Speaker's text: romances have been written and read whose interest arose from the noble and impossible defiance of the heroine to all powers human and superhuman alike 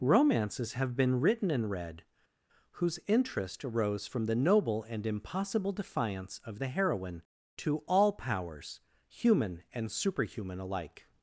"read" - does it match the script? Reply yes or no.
yes